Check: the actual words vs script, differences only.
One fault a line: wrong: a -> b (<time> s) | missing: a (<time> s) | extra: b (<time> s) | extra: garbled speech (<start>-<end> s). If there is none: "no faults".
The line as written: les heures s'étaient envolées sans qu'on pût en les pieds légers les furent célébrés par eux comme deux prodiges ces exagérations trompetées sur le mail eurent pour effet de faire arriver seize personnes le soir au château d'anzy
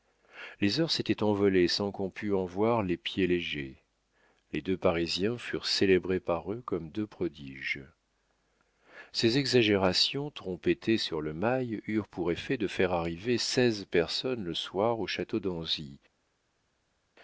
extra: voir (2.5 s)
extra: deux parisiens (4.6 s)